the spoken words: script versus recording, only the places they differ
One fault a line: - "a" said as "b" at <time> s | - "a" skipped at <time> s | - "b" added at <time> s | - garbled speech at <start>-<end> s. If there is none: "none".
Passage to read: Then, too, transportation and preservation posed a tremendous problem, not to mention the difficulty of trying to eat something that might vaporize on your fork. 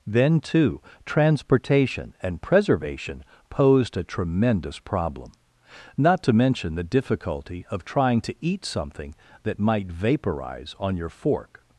none